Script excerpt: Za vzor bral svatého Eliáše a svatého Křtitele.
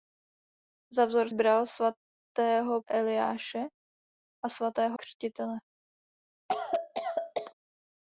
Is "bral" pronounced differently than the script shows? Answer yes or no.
no